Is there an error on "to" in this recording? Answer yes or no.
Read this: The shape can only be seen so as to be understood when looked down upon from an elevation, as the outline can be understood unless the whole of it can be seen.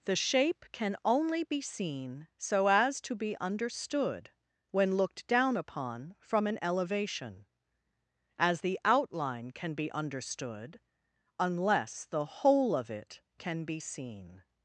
no